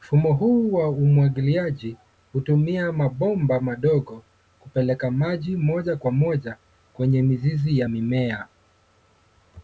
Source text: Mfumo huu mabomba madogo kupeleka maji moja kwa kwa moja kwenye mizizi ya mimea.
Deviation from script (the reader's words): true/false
true